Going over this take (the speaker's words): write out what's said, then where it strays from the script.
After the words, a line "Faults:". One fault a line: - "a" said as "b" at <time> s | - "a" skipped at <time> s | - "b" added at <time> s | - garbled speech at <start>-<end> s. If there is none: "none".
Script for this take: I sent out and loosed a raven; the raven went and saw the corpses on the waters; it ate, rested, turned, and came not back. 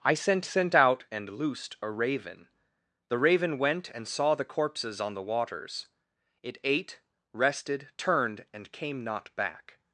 I sent sent out and loosed a raven; the raven went and saw the corpses on the waters; it ate, rested, turned, and came not back.
Faults:
- "sent" added at 0.4 s